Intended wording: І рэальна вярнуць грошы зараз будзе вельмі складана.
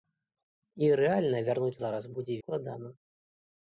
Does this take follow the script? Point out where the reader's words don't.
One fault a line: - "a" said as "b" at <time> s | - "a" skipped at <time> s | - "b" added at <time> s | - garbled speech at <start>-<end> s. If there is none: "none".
- "грошы" skipped at 1.8 s
- "вельмі" skipped at 2.4 s